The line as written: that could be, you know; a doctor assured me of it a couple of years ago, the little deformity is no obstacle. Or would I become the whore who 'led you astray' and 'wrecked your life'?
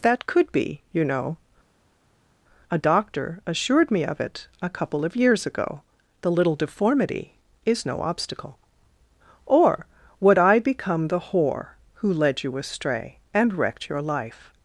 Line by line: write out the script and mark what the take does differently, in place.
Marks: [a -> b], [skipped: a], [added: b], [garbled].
that could be, you know; a doctor assured me of it a couple of years ago, the little deformity is no obstacle. Or would I become the whore who 'led you astray' and 'wrecked your life'?